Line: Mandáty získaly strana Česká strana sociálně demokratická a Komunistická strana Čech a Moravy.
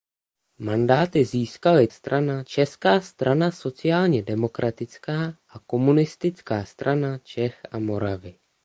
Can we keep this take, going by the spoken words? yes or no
yes